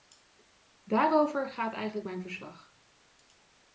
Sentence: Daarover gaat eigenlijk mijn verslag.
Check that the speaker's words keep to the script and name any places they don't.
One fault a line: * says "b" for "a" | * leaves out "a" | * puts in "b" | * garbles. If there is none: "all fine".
all fine